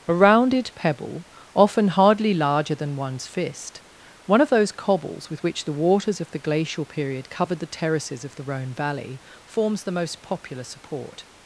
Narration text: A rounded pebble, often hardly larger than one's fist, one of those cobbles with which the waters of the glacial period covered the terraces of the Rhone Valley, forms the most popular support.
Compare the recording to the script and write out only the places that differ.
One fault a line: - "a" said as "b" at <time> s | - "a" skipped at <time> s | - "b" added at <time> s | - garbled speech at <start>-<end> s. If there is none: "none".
none